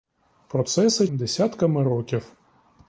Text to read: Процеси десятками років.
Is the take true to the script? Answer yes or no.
yes